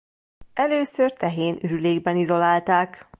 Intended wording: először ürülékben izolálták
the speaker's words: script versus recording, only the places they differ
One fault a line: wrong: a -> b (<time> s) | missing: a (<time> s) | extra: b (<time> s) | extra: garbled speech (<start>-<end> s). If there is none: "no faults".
extra: tehén (1.1 s)